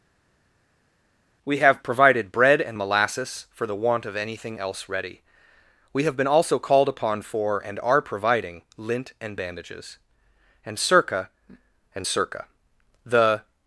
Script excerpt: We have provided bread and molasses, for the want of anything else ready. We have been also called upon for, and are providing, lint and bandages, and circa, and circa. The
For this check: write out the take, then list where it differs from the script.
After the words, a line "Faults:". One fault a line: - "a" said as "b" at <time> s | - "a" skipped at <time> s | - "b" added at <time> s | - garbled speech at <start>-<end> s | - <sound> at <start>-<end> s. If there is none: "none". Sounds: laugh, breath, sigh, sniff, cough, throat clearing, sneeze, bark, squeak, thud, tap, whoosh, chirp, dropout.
We have provided bread and molasses, for the want of anything else ready. We have been also called upon for, and are providing, lint and bandages, and circa, and circa. The
Faults:
none